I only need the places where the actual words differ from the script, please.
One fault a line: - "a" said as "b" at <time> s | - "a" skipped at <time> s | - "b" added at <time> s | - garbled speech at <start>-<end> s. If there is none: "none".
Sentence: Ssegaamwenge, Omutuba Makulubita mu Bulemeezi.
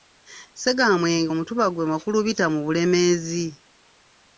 - "gw'e" added at 1.7 s